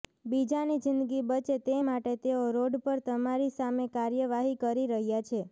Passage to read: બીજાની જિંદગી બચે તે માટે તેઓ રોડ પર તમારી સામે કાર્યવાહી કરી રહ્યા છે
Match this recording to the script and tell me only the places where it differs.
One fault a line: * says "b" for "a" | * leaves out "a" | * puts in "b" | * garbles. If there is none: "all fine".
all fine